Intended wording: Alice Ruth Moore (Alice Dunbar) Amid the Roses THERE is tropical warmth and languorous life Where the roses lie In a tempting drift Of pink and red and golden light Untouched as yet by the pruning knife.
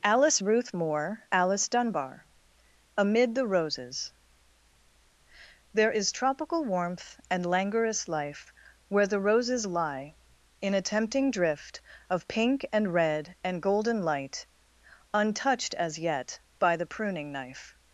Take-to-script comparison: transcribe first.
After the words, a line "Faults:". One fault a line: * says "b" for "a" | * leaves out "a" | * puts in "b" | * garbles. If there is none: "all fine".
Alice Ruth Moore (Alice Dunbar) Amid the Roses THERE is tropical warmth and languorous life Where the roses lie In a tempting drift Of pink and red and golden light Untouched as yet by the pruning knife.
Faults:
all fine